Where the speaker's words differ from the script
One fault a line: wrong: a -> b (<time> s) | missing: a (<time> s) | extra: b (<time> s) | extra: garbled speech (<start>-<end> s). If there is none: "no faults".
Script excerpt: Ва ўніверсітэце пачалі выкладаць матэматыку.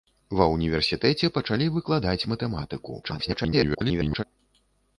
extra: garbled speech (3.0-4.2 s)